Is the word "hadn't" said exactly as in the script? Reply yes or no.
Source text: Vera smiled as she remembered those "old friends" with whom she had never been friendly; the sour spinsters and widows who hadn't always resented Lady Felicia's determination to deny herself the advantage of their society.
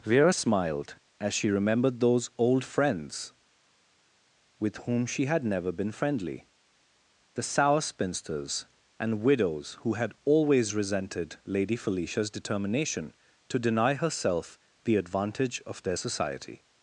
no